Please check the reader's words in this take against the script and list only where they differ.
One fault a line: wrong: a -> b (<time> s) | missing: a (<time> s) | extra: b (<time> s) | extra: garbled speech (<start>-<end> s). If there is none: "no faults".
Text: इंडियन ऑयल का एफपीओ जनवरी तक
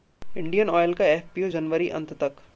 extra: अंत (2.0 s)